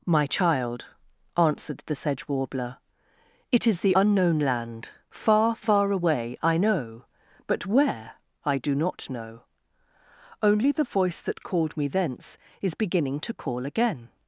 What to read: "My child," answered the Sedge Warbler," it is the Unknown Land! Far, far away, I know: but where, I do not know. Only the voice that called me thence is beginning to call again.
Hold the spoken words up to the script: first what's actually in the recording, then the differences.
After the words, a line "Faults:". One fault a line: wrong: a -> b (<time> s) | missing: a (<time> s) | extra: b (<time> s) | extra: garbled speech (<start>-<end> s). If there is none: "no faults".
"My child," answered the Sedge Warbler," it is the Unknown Land! Far, far away, I know: but where, I do not know. Only the voice that called me thence is beginning to call again.
Faults:
no faults